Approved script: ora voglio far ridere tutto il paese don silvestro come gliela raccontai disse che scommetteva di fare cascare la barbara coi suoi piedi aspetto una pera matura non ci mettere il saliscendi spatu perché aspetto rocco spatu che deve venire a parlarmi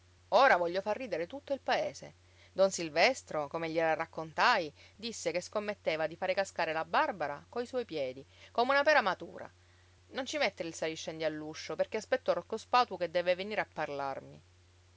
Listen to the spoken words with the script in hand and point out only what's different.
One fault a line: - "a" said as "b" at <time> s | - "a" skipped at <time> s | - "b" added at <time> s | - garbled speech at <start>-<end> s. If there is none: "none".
- "aspetto" said as "come" at 8.5 s
- "spatu" said as "all'uscio" at 11.2 s